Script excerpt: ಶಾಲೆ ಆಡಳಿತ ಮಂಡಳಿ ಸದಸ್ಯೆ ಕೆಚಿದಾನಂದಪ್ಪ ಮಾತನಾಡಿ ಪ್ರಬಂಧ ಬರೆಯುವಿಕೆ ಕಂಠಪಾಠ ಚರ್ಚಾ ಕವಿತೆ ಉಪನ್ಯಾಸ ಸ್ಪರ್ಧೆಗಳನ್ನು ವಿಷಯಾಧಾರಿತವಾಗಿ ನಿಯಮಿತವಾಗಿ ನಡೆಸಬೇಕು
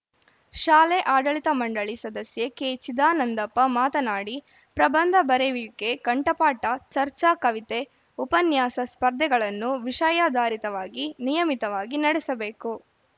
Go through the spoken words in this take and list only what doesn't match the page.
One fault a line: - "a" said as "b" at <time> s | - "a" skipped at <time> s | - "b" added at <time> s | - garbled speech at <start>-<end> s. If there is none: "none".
none